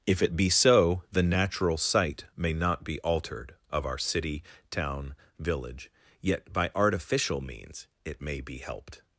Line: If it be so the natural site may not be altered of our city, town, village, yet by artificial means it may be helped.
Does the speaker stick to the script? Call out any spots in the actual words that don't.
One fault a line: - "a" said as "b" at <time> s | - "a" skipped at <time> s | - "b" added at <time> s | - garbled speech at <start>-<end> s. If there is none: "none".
none